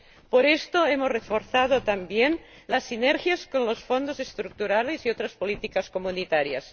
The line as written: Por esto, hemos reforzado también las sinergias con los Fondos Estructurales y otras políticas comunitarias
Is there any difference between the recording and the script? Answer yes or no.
no